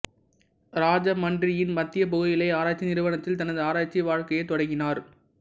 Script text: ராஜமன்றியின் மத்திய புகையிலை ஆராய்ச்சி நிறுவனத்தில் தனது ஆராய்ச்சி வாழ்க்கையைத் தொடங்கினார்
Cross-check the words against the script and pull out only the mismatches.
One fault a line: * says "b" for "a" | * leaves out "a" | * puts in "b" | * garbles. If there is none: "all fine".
all fine